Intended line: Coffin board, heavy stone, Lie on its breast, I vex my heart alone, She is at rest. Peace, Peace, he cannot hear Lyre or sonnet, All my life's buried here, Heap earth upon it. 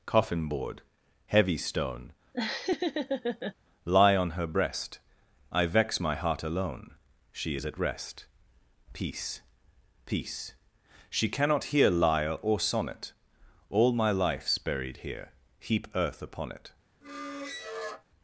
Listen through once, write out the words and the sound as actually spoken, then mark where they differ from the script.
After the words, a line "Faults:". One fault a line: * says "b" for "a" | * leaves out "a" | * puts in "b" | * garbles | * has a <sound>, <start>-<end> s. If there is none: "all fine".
Coffin board, heavy stone, Lie on her breast, I vex my heart alone, She is at rest. Peace, Peace, she cannot hear Lyre or sonnet, All my life's buried here, Heap earth upon it.
Faults:
* has a laugh, 2.3-3.5 s
* says "her" for "its"
* says "she" for "he"
* has a squeak, 17.0-18.0 s